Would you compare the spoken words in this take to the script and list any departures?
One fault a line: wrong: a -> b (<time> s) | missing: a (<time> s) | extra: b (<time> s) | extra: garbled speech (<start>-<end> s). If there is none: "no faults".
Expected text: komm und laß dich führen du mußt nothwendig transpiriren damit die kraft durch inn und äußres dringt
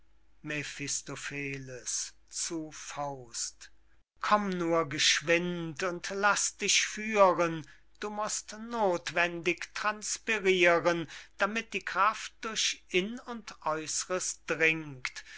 extra: nur geschwind (4.5 s)